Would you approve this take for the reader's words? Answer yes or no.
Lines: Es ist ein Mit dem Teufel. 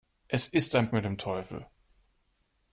yes